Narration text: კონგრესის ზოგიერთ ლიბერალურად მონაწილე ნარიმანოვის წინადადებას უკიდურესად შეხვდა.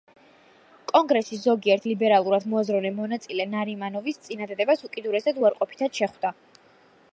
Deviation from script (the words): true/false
true